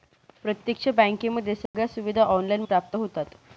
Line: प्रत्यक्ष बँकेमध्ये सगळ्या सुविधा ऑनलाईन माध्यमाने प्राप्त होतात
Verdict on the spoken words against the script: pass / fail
fail